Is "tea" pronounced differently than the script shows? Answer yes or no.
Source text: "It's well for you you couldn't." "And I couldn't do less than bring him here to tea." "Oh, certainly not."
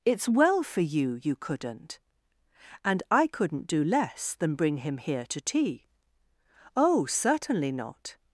no